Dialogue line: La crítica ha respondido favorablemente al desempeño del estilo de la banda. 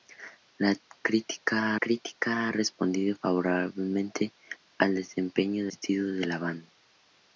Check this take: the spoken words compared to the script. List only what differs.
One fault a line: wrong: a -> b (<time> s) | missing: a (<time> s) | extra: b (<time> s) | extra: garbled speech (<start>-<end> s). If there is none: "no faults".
extra: crítica (1.8 s)
missing: del (5.7 s)